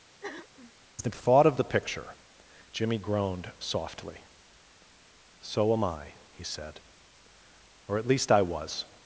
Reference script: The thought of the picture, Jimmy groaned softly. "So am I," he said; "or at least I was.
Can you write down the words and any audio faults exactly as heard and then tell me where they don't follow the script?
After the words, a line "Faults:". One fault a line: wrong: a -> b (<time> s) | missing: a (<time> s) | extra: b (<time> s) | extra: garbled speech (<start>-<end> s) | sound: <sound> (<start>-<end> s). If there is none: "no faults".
The thought of the picture, Jimmy groaned softly. "So am I," he said; "or at least I was.
Faults:
sound: throat clearing (0.2-0.7 s)